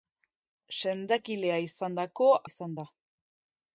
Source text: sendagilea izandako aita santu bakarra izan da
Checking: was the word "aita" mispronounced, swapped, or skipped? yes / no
yes